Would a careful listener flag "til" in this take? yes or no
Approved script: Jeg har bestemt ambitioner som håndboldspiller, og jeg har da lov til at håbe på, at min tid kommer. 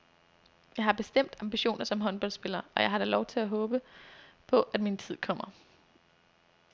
no